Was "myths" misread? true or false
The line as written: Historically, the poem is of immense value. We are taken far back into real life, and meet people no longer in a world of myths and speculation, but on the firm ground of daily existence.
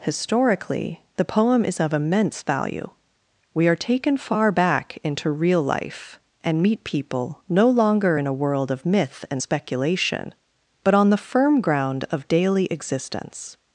true